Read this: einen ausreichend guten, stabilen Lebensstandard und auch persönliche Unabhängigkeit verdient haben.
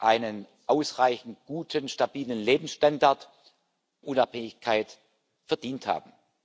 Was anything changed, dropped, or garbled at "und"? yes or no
yes